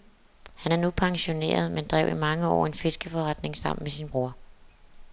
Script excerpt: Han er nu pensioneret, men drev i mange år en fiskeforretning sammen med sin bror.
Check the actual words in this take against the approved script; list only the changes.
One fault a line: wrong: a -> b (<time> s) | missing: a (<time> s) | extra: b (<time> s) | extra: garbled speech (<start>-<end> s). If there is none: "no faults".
no faults